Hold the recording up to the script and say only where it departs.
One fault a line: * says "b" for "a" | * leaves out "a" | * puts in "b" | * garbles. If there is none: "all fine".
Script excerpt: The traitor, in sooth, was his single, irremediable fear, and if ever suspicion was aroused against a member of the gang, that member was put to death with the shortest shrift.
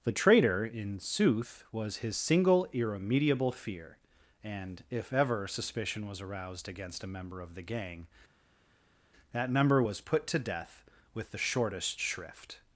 all fine